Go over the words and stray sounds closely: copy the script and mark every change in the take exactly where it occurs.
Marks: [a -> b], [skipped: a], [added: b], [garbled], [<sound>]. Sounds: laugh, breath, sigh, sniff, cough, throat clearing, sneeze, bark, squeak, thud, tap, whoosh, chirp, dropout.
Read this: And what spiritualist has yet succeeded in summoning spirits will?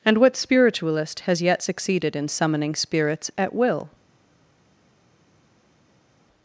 And what spiritualist has yet succeeded in summoning spirits [added: at] will?